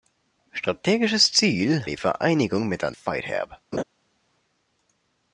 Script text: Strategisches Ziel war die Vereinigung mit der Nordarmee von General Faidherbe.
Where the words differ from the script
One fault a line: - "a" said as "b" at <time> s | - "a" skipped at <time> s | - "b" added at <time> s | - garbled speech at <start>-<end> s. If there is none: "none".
- "war" skipped at 1.9 s
- "Nordarmee von General" skipped at 2.9 s